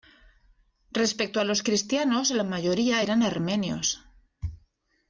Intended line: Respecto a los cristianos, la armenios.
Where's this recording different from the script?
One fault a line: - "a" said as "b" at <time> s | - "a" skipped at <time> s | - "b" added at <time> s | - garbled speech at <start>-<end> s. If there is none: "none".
- "mayoría eran" added at 2.4 s